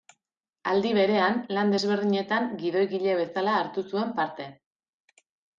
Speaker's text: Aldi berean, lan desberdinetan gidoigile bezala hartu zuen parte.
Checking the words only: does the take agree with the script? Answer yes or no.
yes